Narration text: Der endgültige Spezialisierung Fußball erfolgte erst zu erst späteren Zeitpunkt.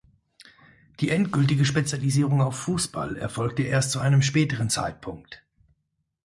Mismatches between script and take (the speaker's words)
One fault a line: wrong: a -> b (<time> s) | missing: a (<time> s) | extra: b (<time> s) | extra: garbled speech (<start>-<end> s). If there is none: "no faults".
wrong: Der -> Die (1.0 s)
extra: auf (2.4 s)
wrong: erst -> einem (4.0 s)